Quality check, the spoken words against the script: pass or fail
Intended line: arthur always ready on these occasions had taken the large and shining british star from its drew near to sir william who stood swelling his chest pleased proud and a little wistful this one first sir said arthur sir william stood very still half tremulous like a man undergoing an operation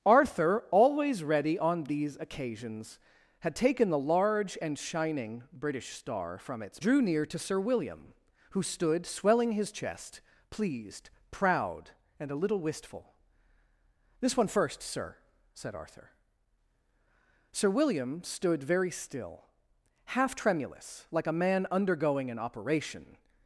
pass